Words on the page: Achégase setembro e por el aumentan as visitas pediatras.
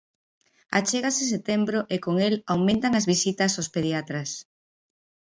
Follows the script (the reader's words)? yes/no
no